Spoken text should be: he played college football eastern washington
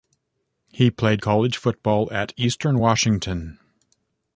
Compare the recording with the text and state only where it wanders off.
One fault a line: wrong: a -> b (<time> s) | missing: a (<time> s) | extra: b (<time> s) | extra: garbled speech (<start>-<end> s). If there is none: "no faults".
extra: at (2.1 s)